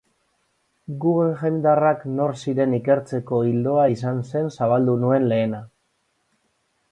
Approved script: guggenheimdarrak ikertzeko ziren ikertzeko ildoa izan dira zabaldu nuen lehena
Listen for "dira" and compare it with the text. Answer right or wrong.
wrong